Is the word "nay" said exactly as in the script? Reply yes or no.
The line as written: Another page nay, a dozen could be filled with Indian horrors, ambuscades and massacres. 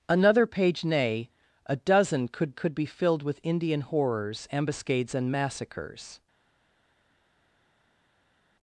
yes